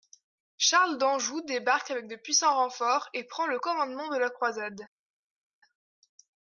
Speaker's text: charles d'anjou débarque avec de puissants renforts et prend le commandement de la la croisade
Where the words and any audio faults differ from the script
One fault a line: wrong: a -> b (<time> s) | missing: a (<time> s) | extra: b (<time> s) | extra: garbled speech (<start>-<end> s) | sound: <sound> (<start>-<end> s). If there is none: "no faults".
missing: la (4.3 s)